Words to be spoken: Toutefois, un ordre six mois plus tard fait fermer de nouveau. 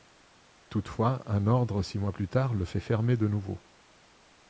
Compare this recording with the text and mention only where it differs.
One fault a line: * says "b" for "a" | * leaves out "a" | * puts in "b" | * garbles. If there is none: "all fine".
* puts in "le"